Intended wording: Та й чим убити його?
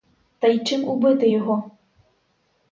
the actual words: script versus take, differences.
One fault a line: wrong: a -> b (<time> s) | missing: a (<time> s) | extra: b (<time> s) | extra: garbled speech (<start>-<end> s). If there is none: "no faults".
no faults